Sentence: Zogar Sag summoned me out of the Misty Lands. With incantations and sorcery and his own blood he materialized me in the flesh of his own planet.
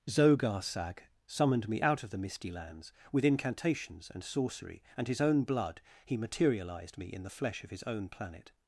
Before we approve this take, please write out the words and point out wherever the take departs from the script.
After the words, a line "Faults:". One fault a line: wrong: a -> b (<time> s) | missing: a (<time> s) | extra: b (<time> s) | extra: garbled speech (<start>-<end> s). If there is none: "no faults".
Zogar Sag summoned me out of the Misty Lands. With incantations and sorcery and his own blood he materialized me in the flesh of his own planet.
Faults:
no faults